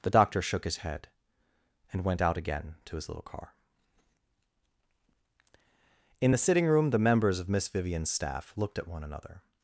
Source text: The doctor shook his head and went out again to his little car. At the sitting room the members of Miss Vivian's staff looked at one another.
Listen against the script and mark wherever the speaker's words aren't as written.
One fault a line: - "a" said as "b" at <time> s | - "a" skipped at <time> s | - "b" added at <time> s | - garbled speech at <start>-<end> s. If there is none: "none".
- "At" said as "In" at 6.2 s